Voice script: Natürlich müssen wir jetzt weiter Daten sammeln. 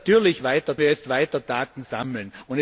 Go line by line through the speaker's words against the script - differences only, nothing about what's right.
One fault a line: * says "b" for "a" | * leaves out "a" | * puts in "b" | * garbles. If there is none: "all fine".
* says "weiter" for "müssen"